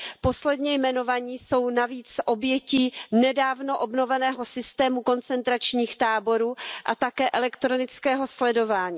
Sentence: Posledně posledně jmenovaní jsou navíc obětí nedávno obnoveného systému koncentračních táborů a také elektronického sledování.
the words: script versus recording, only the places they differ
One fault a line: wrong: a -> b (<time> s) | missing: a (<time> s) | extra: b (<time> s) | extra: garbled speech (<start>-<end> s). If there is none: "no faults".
missing: posledně (0.7 s)